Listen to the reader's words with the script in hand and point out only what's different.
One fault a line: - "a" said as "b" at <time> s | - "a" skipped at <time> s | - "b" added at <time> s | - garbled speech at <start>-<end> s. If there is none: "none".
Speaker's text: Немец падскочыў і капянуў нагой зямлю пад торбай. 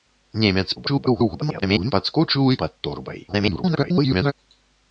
- garbled speech at 0.8-1.9 s
- "капянуў нагой зямлю" skipped at 2.6 s
- garbled speech at 3.3-4.3 s